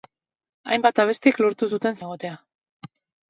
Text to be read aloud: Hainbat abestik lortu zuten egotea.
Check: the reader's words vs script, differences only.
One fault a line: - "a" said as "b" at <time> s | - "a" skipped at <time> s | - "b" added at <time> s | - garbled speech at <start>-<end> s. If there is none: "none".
none